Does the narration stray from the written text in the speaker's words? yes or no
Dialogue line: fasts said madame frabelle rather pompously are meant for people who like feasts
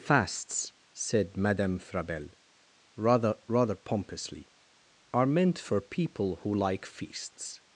yes